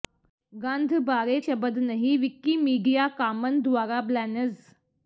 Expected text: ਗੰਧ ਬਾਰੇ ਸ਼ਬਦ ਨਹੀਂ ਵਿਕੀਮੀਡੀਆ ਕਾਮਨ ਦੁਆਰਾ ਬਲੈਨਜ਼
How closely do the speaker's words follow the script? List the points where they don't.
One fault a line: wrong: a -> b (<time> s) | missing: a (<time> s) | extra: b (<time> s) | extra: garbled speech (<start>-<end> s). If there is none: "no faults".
no faults